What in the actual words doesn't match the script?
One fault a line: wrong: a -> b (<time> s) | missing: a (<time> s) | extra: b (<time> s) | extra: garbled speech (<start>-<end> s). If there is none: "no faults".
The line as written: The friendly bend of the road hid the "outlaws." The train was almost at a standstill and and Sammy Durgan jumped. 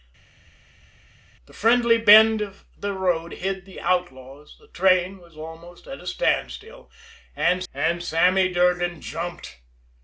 no faults